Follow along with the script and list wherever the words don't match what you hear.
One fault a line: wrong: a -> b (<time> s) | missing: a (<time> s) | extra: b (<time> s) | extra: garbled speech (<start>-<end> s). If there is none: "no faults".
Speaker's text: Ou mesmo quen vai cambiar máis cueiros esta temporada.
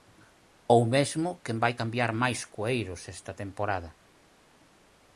no faults